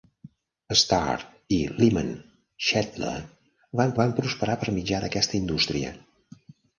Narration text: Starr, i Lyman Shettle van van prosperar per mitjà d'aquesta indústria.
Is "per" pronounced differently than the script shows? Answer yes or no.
no